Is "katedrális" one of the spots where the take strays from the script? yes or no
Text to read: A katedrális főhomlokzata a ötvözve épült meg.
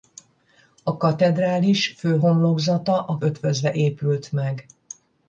no